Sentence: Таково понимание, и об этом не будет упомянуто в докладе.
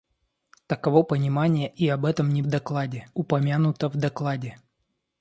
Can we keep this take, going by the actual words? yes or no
no